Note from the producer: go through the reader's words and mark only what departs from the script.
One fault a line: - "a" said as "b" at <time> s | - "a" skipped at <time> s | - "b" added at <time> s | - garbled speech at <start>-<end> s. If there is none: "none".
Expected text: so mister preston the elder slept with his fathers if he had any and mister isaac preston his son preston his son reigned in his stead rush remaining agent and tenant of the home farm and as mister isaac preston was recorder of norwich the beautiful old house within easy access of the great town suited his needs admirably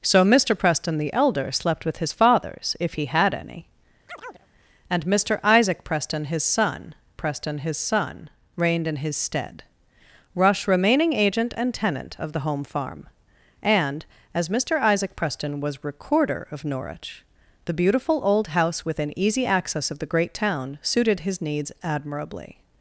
none